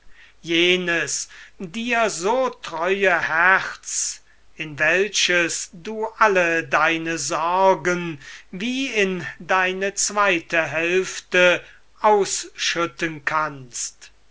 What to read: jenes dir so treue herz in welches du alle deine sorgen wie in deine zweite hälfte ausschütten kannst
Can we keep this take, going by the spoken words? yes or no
yes